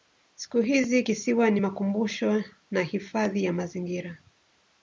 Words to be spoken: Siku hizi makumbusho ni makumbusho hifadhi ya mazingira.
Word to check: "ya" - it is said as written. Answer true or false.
true